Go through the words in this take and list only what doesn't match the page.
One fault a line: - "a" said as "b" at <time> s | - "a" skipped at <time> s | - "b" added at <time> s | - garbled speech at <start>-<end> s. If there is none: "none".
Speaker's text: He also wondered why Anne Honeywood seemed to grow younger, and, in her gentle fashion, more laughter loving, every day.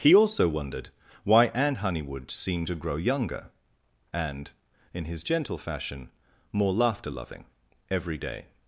- "her" said as "his" at 5.1 s